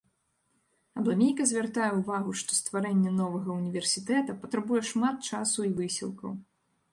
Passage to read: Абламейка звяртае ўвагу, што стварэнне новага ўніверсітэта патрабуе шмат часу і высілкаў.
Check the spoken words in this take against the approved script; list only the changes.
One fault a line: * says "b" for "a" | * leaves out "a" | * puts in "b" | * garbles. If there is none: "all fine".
all fine